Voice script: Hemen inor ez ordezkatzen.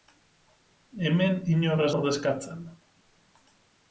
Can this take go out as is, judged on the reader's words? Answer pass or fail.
pass